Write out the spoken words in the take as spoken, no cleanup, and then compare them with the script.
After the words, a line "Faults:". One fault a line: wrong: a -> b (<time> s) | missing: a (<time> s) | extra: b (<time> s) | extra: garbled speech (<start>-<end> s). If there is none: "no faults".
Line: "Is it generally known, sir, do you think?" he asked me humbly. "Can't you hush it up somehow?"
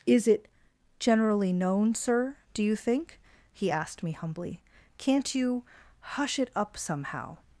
"Is it generally known, sir, do you think?" he asked me humbly. "Can't you hush it up somehow?"
Faults:
no faults